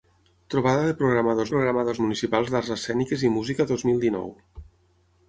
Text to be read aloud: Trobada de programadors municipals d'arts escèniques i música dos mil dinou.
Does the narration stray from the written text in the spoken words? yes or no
yes